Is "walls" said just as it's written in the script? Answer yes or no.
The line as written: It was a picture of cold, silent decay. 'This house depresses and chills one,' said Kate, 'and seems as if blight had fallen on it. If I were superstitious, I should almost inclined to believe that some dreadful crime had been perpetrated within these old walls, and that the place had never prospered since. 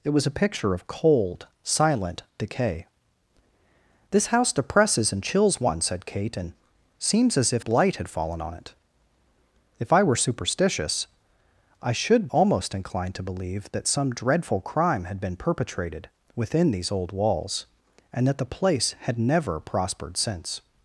yes